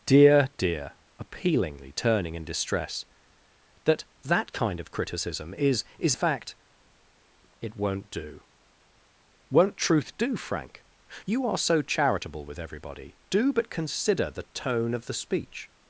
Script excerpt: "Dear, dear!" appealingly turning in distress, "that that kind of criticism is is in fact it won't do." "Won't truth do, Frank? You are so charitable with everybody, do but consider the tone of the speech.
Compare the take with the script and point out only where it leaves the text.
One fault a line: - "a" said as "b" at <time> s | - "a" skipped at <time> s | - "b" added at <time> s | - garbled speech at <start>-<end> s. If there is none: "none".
- "in" skipped at 6.2 s